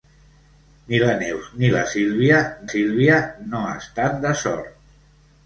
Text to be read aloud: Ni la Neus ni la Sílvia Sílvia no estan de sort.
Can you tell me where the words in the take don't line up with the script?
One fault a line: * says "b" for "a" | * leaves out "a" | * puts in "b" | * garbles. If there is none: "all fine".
all fine